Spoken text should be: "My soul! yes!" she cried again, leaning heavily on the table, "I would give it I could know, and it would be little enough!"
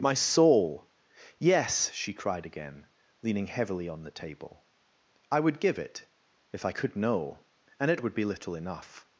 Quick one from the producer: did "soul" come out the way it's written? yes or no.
yes